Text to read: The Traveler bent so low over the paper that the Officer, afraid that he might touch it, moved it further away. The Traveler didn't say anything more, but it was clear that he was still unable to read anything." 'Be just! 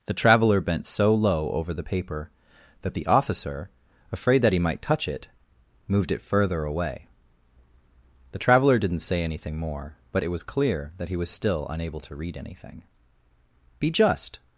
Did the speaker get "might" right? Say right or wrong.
right